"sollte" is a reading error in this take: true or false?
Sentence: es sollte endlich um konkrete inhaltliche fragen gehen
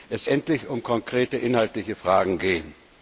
true